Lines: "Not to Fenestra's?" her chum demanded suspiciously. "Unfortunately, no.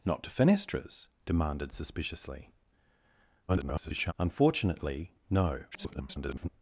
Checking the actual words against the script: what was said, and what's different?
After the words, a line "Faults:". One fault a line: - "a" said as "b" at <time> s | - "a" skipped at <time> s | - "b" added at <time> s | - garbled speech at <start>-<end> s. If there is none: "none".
"Not to Fenestra's?" demanded suspiciously. [garbled] "Unfortunately, no. [garbled]
Faults:
- "her chum" skipped at 1.1 s
- garbled speech at 3.5-4.1 s
- garbled speech at 5.7-6.5 s